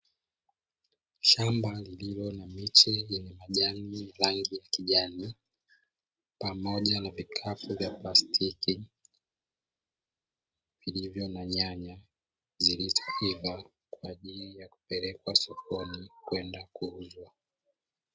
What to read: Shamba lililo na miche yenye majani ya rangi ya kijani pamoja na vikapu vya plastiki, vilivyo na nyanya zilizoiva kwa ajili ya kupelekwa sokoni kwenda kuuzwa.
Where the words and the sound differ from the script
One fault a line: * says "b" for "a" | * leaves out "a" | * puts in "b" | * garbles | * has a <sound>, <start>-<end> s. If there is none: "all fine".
all fine